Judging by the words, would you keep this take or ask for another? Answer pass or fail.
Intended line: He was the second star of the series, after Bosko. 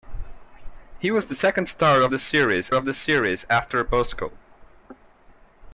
fail